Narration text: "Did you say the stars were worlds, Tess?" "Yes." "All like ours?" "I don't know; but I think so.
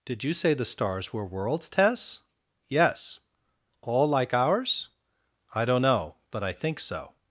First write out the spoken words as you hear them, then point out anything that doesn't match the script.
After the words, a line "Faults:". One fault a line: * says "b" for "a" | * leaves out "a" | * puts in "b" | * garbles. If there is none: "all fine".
"Did you say the stars were worlds, Tess?" "Yes." "All like ours?" "I don't know; but I think so.
Faults:
all fine